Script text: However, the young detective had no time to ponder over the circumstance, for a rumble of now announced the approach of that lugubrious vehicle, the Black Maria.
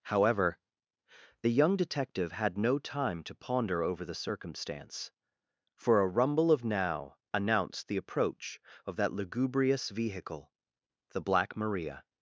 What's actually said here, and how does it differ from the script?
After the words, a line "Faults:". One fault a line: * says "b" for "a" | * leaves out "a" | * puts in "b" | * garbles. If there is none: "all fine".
However, the young detective had no time to ponder over the circumstance, for a rumble of now announced the approach of that lugubrious vehicle, the Black Maria.
Faults:
all fine